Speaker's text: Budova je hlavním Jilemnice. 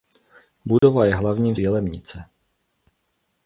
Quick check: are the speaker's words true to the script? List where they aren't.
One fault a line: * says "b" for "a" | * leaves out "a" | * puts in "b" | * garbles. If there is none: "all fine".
all fine